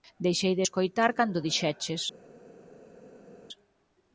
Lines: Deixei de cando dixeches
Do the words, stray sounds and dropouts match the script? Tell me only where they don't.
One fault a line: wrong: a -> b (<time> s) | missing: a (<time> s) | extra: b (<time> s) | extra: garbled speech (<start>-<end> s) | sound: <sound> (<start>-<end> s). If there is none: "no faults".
extra: escoitar (0.6 s)